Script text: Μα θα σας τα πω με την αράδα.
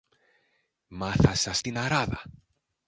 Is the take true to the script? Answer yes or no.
no